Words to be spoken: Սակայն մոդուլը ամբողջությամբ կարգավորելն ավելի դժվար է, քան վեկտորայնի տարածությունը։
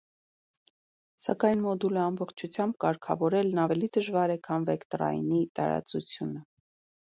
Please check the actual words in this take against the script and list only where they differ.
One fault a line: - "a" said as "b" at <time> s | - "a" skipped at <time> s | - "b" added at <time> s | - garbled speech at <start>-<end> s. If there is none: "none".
none